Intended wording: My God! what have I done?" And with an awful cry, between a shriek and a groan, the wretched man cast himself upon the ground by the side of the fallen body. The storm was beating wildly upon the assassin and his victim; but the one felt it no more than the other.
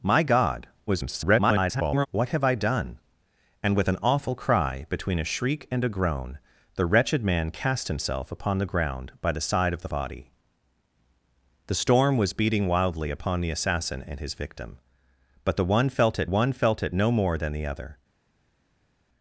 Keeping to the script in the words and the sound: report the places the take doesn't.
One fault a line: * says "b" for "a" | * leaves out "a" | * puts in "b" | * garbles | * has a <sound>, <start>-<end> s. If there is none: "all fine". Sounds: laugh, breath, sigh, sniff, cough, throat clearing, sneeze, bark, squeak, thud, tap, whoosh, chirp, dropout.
* garbles
* leaves out "fallen"
* puts in "one felt it"